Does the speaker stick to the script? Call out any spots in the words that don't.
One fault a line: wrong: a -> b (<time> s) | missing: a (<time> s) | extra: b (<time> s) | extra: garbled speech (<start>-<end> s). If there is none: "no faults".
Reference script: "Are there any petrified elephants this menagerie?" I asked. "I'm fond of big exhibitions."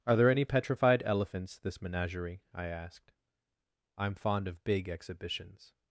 no faults